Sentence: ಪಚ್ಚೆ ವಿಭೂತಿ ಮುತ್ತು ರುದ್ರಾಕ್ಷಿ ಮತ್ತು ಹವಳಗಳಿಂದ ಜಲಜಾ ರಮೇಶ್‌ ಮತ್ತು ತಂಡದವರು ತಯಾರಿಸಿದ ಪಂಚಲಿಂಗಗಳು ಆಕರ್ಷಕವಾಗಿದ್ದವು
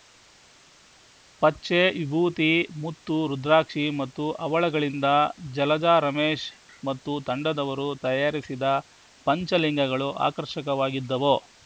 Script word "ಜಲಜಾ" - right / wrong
right